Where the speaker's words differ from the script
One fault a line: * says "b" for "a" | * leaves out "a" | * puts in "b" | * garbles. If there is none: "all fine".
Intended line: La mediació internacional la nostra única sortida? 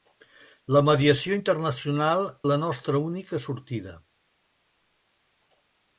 all fine